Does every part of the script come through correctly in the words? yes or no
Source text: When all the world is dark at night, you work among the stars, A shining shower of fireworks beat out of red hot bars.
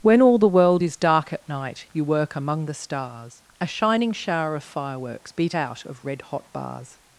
yes